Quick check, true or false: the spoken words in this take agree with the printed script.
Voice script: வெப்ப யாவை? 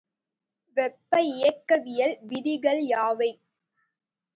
false